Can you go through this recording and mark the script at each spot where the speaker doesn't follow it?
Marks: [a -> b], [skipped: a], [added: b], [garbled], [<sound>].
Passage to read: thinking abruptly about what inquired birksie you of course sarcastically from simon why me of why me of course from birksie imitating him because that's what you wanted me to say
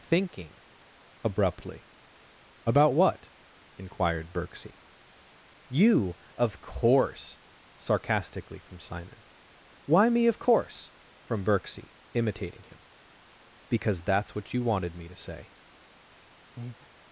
thinking abruptly about what inquired birksie you of course sarcastically from simon why me of [skipped: why me of] course from birksie imitating him because that's what you wanted me to say [breath]